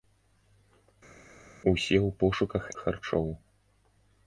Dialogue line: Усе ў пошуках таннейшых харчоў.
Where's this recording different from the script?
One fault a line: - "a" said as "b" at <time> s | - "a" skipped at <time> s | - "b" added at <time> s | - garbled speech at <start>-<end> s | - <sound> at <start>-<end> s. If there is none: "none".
- "таннейшых" skipped at 2.6 s